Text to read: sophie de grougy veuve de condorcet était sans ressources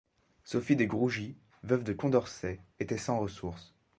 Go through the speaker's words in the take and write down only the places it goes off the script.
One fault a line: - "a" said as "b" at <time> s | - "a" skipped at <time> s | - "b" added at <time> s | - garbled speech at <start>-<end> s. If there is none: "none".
none